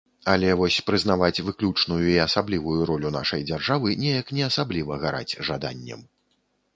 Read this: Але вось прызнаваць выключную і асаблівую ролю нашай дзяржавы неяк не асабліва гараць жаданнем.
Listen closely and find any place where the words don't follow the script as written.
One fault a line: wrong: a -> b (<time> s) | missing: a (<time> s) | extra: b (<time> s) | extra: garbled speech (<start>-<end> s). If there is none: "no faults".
no faults